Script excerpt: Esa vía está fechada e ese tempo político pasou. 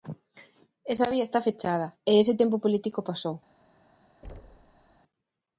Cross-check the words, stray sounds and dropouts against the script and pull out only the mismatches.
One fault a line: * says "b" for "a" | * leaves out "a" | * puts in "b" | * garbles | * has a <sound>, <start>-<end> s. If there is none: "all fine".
* has a thud, 4.2-5.0 s